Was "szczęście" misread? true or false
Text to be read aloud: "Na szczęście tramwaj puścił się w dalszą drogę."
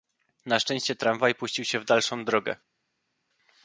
false